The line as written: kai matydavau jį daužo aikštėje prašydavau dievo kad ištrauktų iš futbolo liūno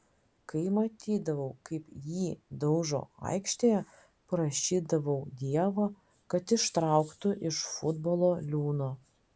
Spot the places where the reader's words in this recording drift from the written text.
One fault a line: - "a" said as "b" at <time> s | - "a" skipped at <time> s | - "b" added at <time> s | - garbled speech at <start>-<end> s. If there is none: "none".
- "kaip" added at 1.7 s